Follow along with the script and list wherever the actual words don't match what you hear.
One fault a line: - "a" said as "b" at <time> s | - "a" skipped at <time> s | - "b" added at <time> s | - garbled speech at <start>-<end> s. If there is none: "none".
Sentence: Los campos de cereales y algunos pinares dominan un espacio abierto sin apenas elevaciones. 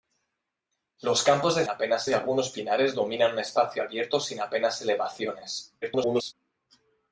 - "cereales" said as "apenas" at 1.7 s
- garbled speech at 5.8-6.3 s